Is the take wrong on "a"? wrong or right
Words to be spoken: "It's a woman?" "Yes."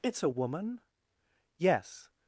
right